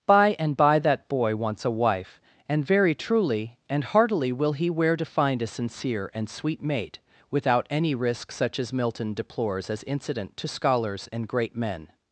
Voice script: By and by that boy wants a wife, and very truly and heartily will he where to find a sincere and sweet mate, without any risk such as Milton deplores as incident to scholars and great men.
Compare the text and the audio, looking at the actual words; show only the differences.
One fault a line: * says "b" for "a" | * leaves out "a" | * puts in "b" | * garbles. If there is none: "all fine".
all fine